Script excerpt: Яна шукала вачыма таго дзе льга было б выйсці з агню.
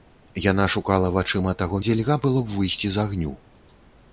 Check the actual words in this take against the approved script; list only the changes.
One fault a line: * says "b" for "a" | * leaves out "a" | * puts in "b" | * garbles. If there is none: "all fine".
all fine